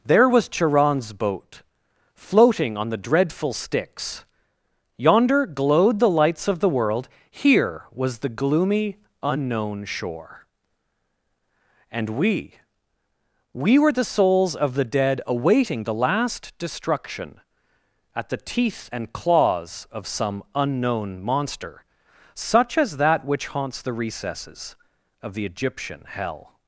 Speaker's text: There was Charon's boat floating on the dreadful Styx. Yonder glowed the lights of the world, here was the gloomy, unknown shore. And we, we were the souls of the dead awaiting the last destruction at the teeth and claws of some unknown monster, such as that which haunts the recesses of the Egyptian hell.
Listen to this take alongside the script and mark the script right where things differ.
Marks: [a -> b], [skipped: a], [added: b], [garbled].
There was Charon's boat floating on the dreadful Styx. Yonder glowed the lights of the world, here was the gloomy, unknown shore. And we, we were the souls of the dead awaiting the last destruction at the teeth and claws of some unknown monster, such as that which haunts the recesses of the Egyptian hell.